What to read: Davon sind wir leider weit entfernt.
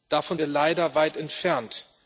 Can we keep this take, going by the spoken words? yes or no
no